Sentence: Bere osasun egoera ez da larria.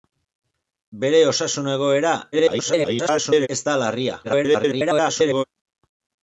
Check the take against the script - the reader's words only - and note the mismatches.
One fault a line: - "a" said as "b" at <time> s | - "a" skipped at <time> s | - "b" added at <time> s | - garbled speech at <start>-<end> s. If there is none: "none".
- garbled speech at 2.3-3.5 s
- garbled speech at 4.2-5.4 s